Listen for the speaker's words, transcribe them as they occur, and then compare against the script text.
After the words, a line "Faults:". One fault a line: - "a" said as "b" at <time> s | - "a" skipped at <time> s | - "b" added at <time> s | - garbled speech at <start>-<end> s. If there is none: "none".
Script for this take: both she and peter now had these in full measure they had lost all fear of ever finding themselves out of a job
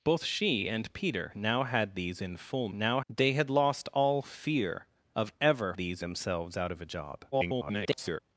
both she and peter now had these in full now they had lost all fear of ever these themselves out of a job [garbled]
Faults:
- "measure" said as "now" at 2.7 s
- "finding" said as "these" at 5.8 s
- garbled speech at 7.3-8.2 s